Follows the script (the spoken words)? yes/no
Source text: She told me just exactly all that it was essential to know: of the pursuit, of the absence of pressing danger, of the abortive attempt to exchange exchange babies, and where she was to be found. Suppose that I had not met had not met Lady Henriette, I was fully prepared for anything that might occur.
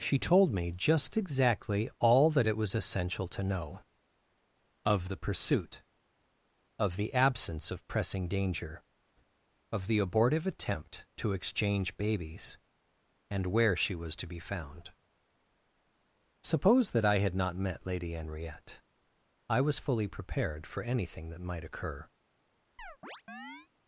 no